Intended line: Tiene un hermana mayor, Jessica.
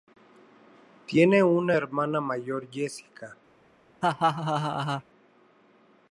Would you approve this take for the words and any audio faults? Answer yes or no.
no